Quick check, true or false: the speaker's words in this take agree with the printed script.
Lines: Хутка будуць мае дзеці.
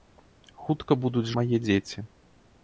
true